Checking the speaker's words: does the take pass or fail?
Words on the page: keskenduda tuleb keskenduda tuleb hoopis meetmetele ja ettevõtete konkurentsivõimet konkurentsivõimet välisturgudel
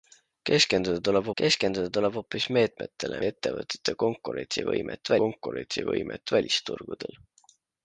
pass